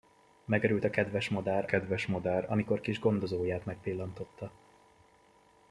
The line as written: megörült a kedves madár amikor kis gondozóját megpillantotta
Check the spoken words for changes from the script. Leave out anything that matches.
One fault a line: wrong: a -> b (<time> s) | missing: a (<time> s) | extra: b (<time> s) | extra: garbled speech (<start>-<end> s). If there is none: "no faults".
extra: kedves madár (1.6 s)